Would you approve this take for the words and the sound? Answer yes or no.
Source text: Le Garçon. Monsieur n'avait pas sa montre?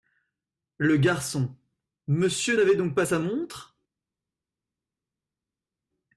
no